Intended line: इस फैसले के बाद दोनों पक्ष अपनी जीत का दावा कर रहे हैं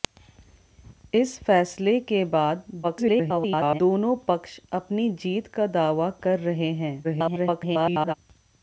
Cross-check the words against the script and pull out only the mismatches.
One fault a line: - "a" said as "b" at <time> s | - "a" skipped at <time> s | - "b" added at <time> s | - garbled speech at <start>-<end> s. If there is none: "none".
- garbled speech at 2.8-3.8 s
- garbled speech at 7.0-8.1 s